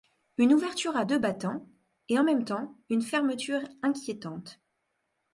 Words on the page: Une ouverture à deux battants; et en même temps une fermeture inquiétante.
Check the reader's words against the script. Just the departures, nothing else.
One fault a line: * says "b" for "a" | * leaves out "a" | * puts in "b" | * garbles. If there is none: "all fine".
all fine